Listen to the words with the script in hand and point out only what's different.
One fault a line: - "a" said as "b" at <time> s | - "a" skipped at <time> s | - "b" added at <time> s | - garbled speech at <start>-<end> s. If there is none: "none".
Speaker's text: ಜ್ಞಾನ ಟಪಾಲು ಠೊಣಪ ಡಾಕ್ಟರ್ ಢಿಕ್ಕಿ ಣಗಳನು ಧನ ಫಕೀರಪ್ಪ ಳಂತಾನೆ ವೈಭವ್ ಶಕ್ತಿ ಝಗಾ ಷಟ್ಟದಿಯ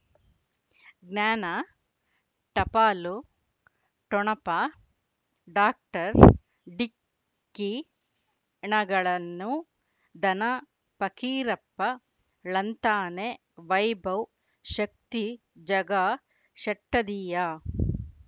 none